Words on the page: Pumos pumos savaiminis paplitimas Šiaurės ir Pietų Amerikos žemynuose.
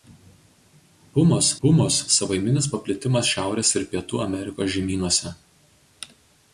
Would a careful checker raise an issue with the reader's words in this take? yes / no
no